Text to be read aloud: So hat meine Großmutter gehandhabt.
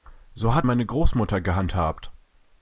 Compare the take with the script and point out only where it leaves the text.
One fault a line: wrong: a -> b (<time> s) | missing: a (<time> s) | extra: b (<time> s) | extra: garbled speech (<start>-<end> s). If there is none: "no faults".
no faults